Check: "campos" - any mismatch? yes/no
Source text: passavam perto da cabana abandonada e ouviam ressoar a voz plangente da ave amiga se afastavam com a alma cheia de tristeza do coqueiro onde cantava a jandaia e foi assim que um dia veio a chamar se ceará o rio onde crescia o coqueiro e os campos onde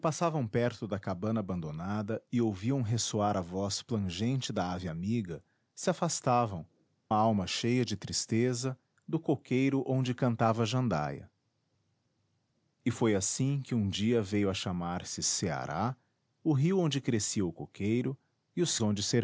yes